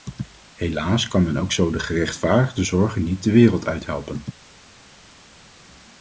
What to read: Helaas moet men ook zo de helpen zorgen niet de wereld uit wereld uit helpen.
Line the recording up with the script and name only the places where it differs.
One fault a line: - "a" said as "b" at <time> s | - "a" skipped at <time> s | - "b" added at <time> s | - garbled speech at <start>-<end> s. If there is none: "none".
- "moet" said as "kan" at 1.1 s
- "helpen" said as "gerechtvaardigde" at 1.8 s
- "wereld uit" skipped at 3.9 s